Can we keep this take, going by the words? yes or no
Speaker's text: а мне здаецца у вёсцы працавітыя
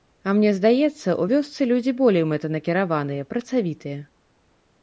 no